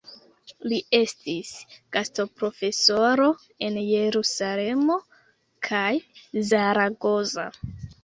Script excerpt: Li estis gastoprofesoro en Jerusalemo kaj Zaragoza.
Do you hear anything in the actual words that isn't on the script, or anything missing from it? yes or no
no